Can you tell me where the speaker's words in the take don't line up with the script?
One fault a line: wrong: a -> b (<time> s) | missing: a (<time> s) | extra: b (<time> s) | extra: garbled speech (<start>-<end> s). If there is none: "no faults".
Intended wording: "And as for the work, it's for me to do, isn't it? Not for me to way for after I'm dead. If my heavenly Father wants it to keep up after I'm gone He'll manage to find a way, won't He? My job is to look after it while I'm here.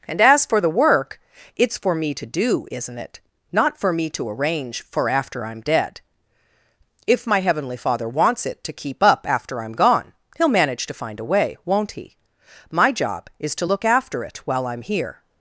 wrong: way -> arrange (4.3 s)